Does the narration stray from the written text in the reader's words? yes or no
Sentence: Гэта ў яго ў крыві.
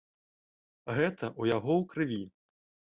no